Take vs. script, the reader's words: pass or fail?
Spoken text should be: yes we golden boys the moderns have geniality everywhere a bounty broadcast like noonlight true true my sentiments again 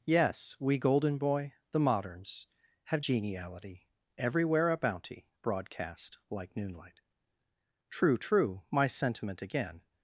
fail